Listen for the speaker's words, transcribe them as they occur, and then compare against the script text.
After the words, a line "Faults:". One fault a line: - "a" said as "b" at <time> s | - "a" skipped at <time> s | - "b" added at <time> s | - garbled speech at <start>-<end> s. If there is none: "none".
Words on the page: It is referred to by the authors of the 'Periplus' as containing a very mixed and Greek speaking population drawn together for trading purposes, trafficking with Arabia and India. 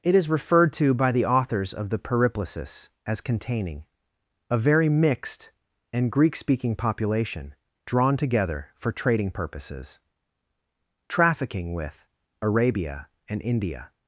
It is referred to by the authors of the 'Periplus' as containing a very mixed and Greek speaking population drawn together for trading purposes, trafficking with Arabia and India.
Faults:
none